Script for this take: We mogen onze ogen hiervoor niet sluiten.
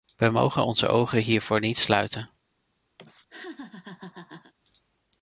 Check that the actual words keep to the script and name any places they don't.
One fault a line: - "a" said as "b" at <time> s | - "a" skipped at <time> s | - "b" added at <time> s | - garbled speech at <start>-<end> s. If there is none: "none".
none